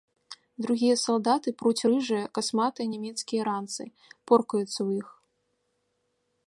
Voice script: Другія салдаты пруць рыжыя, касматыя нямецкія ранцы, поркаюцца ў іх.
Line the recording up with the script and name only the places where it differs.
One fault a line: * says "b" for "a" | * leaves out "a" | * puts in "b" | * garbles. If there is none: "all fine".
all fine